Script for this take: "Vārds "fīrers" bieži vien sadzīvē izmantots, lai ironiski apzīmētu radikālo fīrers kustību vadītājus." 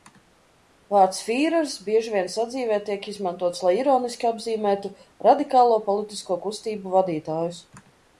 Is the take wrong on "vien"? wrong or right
right